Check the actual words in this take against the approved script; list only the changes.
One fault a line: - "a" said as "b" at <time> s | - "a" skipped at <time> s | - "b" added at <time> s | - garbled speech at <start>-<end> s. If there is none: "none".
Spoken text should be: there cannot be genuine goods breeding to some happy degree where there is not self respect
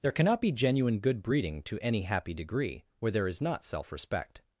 - "goods" said as "good" at 1.0 s
- "some" said as "any" at 1.8 s